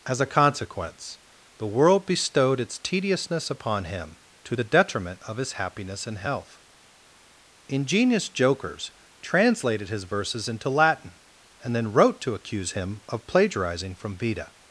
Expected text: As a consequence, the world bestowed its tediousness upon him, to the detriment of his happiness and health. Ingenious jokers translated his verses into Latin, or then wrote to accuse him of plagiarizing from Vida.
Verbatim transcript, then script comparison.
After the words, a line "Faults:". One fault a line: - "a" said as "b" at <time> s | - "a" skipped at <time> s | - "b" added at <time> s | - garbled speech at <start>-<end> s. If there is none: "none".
As a consequence, the world bestowed its tediousness upon him, to the detriment of his happiness and health. Ingenious jokers translated his verses into Latin, and then wrote to accuse him of plagiarizing from Vida.
Faults:
- "or" said as "and" at 11.6 s